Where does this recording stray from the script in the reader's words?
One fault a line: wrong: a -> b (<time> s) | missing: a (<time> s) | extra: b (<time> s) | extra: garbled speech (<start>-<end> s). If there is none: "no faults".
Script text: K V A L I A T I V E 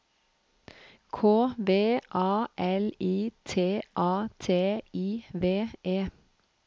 extra: T (3.4 s)